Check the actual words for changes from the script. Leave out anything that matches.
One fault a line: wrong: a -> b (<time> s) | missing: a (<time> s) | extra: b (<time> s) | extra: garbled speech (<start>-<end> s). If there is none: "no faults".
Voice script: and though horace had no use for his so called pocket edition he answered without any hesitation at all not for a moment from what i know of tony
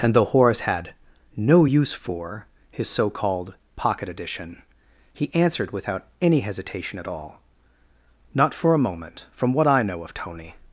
no faults